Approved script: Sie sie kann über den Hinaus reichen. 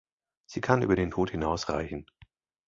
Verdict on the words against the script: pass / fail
fail